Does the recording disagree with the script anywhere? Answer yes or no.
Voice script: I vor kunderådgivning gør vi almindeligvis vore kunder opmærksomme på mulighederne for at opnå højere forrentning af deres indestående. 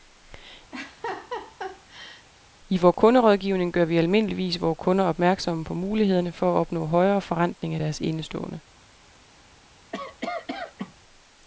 no